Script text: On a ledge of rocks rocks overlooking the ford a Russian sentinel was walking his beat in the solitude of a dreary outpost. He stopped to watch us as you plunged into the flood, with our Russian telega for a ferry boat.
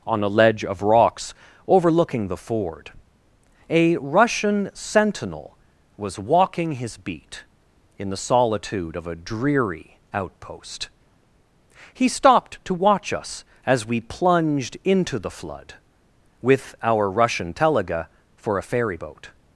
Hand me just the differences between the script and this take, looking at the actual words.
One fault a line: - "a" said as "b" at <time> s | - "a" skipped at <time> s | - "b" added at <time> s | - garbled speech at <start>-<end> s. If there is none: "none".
- "rocks" skipped at 1.3 s
- "you" said as "we" at 13.9 s